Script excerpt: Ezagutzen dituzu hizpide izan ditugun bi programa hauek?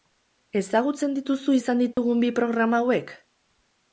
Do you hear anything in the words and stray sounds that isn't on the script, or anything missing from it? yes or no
yes